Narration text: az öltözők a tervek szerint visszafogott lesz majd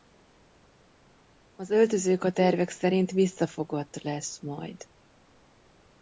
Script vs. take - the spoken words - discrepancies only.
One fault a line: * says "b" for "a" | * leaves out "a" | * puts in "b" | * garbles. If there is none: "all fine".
all fine